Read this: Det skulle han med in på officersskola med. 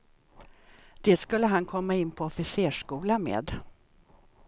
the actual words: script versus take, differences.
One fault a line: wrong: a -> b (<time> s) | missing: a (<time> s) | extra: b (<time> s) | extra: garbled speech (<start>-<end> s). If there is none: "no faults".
wrong: med -> komma (1.6 s)